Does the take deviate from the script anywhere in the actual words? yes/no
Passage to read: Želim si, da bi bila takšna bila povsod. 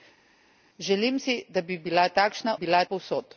no